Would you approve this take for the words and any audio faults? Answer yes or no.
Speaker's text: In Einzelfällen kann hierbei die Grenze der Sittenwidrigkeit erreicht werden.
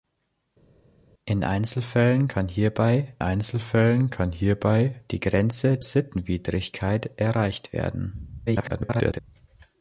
no